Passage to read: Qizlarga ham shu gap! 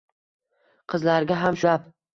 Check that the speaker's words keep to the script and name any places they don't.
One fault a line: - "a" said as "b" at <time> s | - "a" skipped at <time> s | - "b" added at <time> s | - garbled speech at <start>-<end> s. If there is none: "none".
- "shu" skipped at 1.6 s